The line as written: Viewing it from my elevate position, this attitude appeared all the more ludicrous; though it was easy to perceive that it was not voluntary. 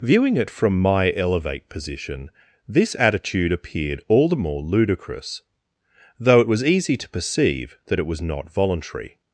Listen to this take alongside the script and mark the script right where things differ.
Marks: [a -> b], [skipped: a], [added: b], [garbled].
Viewing it from my elevate position, this attitude appeared all the more ludicrous; though it was easy to perceive that it was not voluntary.